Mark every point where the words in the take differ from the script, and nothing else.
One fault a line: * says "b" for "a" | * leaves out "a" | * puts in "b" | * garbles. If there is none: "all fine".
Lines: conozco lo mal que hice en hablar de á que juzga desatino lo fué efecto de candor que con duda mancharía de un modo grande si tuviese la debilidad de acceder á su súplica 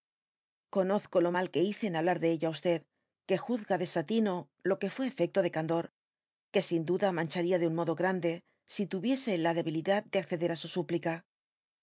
* puts in "ello"
* puts in "que"
* says "sin" for "con"